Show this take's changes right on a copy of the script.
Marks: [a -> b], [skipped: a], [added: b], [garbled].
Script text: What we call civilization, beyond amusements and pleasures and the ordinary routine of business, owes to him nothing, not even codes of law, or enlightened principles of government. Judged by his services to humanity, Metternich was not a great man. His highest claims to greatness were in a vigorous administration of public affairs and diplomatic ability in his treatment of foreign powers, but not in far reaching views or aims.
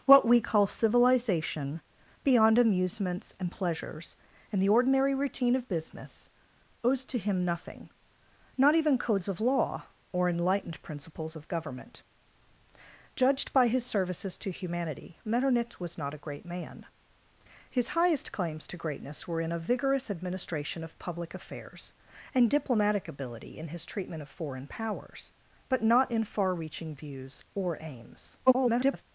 What we call civilization, beyond amusements and pleasures and the ordinary routine of business, owes to him nothing, not even codes of law, or enlightened principles of government. Judged by his services to humanity, Metternich was not a great man. His highest claims to greatness were in a vigorous administration of public affairs and diplomatic ability in his treatment of foreign powers, but not in far reaching views or aims. [garbled]